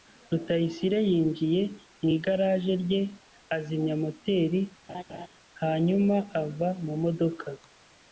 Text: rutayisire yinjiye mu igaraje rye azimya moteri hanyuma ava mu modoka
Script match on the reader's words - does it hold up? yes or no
yes